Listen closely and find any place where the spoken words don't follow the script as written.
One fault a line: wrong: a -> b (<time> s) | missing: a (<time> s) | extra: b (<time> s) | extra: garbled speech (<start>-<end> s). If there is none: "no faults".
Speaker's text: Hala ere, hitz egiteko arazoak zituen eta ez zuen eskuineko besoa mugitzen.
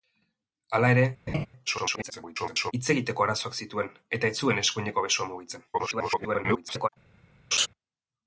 extra: garbled speech (1.7-2.7 s)
extra: garbled speech (5.7-6.9 s)